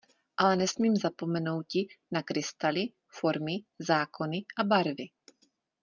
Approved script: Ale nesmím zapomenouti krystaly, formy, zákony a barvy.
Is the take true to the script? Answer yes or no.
no